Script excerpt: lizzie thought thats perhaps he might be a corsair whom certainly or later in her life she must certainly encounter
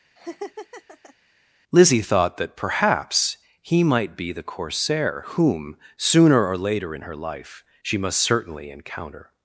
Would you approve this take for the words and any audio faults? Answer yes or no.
no